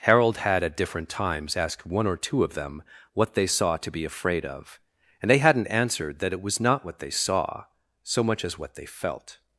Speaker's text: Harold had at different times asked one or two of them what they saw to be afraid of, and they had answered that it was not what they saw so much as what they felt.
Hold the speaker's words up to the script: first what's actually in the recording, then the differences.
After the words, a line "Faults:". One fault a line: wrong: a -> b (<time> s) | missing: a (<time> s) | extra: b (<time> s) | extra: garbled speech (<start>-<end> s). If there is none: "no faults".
Harold had at different times asked one or two of them what they saw to be afraid of, and they hadn't answered that it was not what they saw so much as what they felt.
Faults:
wrong: had -> hadn't (5.4 s)